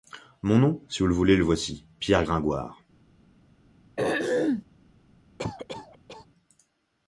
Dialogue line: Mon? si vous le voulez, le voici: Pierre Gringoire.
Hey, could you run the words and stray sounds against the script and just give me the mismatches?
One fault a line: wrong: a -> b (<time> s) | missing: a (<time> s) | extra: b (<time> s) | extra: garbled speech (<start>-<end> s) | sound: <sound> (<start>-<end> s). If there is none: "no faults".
extra: nom (0.6 s)
sound: throat clearing (4.0-4.6 s)
sound: cough (5.4-6.3 s)